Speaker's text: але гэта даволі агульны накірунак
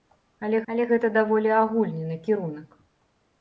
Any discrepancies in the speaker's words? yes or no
yes